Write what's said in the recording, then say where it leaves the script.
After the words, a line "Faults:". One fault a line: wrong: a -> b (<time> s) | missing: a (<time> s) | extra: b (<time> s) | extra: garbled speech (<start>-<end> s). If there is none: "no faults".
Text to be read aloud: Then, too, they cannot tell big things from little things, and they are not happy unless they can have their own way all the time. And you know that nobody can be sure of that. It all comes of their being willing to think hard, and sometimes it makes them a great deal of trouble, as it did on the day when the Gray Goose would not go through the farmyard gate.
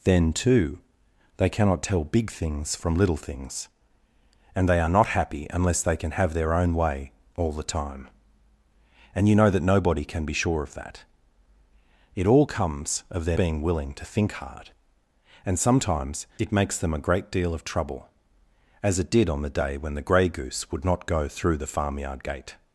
Then, too, they cannot tell big things from little things, and they are not happy unless they can have their own way all the time. And you know that nobody can be sure of that. It all comes of their being willing to think hard, and sometimes it makes them a great deal of trouble, as it did on the day when the Gray Goose would not go through the farmyard gate.
Faults:
no faults